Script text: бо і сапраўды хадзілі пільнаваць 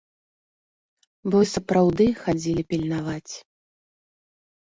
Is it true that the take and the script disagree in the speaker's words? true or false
false